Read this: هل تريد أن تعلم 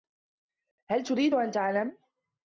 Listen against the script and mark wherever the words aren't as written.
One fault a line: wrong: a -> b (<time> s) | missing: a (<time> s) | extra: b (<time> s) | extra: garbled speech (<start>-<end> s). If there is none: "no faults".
no faults